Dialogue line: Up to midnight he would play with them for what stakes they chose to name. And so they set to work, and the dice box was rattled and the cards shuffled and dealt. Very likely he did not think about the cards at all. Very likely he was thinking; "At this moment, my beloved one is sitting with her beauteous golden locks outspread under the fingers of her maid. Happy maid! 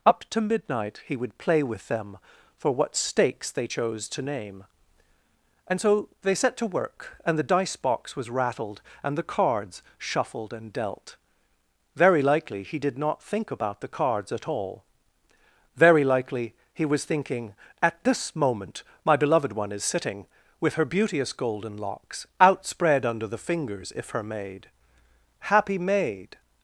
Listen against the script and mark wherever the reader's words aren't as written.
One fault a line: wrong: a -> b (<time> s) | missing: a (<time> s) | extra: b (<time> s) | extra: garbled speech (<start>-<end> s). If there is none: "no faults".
wrong: of -> if (24.0 s)